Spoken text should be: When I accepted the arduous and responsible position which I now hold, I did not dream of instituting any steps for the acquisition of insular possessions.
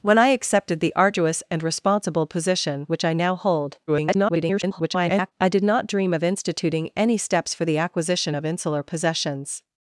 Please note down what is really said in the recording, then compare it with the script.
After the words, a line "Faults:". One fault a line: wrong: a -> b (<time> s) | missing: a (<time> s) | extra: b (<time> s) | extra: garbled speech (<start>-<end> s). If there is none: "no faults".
When I accepted the arduous and responsible position which I now hold, [garbled] I did not dream of instituting any steps for the acquisition of insular possessions.
Faults:
extra: garbled speech (3.9-5.3 s)